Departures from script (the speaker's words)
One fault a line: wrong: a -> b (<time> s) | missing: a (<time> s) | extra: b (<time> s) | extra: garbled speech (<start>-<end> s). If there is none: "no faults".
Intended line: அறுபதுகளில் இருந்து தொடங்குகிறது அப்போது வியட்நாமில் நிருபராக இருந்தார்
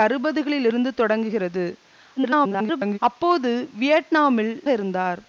extra: garbled speech (2.2-3.0 s)
missing: நிருபராக (4.5 s)